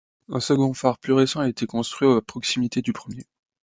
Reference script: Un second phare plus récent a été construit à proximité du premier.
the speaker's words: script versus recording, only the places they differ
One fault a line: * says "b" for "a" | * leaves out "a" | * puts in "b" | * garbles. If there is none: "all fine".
all fine